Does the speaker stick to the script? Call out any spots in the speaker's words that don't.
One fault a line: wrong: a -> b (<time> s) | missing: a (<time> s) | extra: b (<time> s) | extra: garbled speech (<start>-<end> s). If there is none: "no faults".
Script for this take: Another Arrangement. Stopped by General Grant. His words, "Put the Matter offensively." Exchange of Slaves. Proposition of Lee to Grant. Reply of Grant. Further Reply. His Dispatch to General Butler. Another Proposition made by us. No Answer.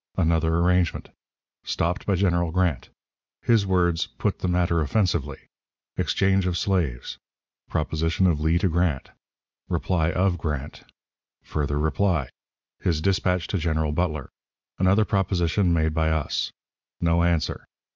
no faults